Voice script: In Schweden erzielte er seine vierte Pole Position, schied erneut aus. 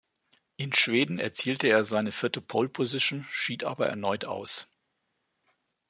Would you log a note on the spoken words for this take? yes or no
yes